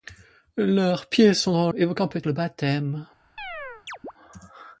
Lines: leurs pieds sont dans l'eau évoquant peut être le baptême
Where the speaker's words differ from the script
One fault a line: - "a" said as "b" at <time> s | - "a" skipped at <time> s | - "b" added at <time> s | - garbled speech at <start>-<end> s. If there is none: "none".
- "l'eau" skipped at 1.7 s
- "être" skipped at 2.2 s